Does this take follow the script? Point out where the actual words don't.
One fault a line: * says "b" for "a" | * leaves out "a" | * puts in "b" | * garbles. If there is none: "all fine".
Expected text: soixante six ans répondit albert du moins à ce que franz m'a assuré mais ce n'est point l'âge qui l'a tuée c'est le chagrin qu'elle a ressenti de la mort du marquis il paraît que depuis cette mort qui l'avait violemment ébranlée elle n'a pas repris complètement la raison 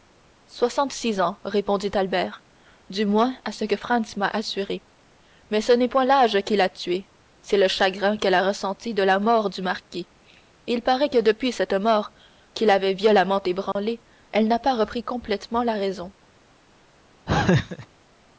all fine